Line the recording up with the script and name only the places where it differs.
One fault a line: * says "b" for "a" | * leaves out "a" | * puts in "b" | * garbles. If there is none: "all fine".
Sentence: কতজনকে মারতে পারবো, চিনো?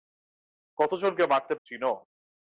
* leaves out "পারবো"